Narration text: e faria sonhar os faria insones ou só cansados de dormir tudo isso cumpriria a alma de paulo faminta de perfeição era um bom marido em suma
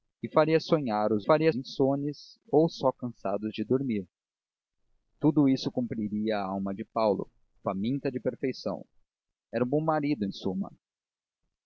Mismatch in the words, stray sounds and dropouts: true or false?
false